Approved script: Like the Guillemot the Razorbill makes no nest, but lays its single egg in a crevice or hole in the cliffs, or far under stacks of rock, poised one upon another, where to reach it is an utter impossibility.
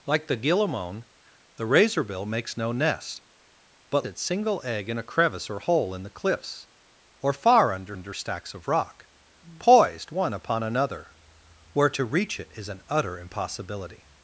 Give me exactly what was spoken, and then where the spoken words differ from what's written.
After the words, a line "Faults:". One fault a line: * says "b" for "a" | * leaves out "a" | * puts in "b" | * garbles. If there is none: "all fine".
Like the Guillemot the Razorbill makes no nest, but its single egg in a crevice or hole in the cliffs, or far under under stacks of rock, poised one upon another, where to reach it is an utter impossibility.
Faults:
* leaves out "lays"
* puts in "under"